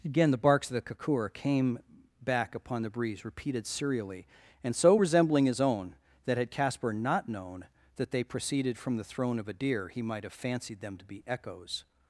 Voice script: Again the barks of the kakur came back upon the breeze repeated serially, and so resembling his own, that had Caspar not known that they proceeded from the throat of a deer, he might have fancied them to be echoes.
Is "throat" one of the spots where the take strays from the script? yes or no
yes